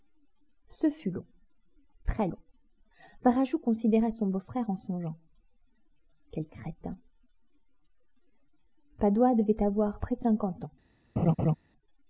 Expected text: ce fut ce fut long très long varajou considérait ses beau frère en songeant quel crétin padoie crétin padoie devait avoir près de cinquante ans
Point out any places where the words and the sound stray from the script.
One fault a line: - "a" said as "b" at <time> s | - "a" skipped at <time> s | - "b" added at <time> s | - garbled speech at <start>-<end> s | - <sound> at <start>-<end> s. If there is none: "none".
- "ce fut" skipped at 1.1 s
- "ses" said as "son" at 4.1 s
- "crétin padoie" skipped at 9.3 s
- laugh at 11.2-11.6 s